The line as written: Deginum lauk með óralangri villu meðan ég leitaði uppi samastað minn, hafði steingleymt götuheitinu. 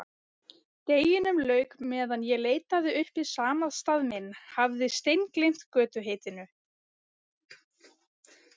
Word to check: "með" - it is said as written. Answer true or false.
false